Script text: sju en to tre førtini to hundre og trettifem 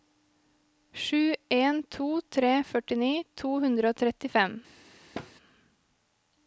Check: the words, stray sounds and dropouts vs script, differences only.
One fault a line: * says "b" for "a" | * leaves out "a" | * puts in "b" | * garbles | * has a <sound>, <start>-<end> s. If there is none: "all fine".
* has a thud, 5.1-5.3 s